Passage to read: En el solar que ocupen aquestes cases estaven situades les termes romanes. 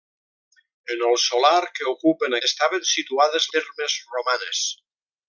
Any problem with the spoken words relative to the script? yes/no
yes